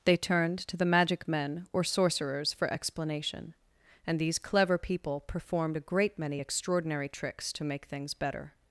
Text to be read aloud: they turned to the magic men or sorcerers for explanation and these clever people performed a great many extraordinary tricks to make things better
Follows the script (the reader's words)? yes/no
yes